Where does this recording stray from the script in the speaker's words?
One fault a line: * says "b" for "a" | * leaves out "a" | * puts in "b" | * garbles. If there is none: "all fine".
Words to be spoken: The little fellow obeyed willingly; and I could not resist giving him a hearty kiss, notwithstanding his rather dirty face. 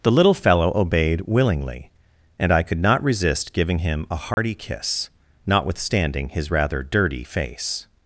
all fine